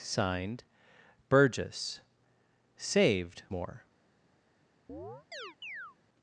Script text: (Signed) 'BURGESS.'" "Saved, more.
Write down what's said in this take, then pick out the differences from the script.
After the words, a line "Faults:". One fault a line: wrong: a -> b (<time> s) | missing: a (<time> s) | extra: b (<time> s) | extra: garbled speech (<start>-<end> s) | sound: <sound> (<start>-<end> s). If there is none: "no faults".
(Signed) 'BURGESS.'" "Saved, more.
Faults:
sound: chirp (4.9-6.0 s)